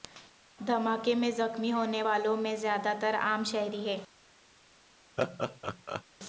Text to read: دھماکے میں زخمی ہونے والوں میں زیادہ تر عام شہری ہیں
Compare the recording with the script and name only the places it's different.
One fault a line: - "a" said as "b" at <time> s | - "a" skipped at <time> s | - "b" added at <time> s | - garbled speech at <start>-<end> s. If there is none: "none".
none